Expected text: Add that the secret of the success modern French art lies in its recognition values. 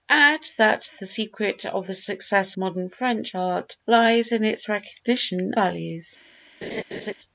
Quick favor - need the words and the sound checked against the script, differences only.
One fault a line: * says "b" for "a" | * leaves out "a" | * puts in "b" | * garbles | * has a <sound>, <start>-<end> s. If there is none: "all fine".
* has a laugh, 6.6-7.1 s